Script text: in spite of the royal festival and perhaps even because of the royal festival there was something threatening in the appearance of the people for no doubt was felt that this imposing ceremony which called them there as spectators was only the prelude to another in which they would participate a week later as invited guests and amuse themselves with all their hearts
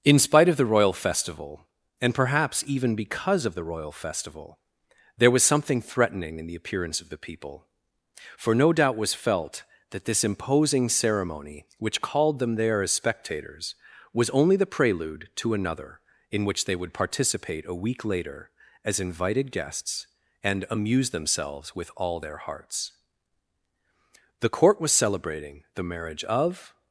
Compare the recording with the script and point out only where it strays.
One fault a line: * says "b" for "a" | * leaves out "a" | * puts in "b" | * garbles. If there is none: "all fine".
* puts in "the court was celebrating the marriage of"